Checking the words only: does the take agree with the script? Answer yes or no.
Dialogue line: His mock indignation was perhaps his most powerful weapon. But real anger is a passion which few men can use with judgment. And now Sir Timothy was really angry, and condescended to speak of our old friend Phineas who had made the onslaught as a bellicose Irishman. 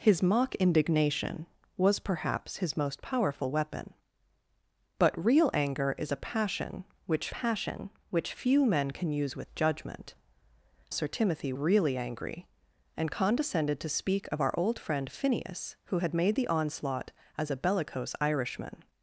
no